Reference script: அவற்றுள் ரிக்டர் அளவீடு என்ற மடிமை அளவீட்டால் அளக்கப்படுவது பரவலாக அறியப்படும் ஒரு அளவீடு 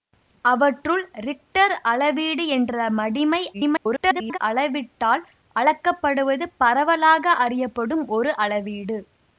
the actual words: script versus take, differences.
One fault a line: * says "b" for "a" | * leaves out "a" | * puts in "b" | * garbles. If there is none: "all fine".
* garbles